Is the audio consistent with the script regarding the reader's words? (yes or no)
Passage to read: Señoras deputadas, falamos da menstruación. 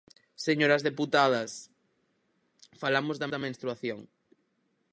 no